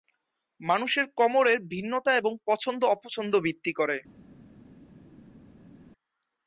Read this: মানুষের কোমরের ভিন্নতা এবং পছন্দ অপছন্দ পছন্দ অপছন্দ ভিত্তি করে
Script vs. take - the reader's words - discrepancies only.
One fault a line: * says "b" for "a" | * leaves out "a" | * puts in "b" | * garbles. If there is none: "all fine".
* leaves out "পছন্দ অপছন্দ"